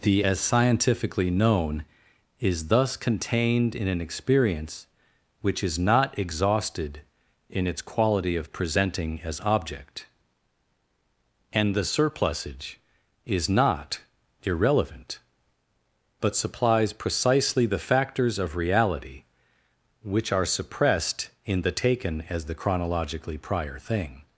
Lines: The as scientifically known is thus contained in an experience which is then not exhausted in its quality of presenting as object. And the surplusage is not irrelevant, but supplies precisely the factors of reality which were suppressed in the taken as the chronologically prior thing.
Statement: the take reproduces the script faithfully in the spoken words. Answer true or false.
false